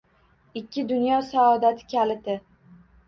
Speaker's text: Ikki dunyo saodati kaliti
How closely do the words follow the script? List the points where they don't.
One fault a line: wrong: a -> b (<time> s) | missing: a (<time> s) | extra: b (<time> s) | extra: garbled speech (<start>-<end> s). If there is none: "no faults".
no faults